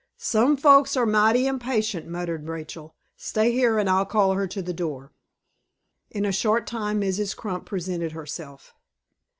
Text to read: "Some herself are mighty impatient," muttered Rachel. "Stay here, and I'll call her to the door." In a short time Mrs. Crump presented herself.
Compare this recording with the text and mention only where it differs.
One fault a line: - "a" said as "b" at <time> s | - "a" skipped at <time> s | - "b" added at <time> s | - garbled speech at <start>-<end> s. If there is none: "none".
- "herself" said as "folks" at 0.6 s